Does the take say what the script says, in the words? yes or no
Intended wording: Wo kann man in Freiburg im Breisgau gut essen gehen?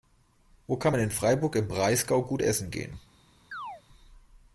yes